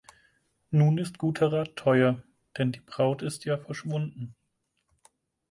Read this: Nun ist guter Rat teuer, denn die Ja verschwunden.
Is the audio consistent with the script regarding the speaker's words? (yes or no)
no